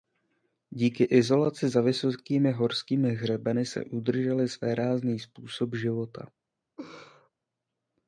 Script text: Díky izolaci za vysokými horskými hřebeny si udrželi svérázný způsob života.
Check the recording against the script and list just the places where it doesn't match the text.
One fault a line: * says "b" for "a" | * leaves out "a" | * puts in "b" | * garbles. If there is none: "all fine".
all fine